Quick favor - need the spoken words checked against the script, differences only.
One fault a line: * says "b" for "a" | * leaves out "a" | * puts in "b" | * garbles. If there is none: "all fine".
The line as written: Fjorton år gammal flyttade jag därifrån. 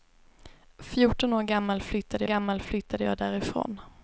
* puts in "gammal flyttade"